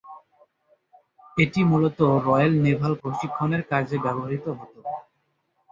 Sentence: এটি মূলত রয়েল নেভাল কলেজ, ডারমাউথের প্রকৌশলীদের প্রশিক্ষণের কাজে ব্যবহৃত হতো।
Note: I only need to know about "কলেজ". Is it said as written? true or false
false